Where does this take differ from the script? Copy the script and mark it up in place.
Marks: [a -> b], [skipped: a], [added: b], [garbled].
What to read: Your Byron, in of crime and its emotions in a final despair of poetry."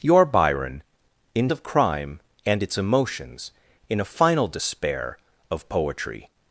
Your Byron, in of crime and its emotions in a final despair of poetry."